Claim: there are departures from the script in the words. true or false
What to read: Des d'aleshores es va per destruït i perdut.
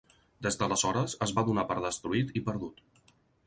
true